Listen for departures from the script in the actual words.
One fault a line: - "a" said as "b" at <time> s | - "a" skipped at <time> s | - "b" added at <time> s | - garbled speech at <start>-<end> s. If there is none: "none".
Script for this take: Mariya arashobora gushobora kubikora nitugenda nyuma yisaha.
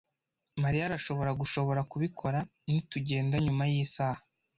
none